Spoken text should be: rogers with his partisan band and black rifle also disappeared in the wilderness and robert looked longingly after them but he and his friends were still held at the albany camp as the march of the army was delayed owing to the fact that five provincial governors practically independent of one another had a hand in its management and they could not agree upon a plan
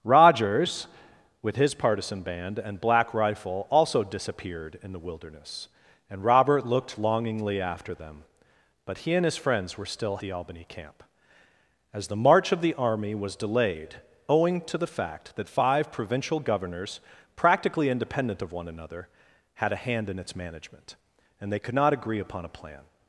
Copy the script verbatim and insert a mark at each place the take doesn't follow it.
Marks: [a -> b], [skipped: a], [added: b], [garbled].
rogers with his partisan band and black rifle also disappeared in the wilderness and robert looked longingly after them but he and his friends were still [skipped: held at] the albany camp as the march of the army was delayed owing to the fact that five provincial governors practically independent of one another had a hand in its management and they could not agree upon a plan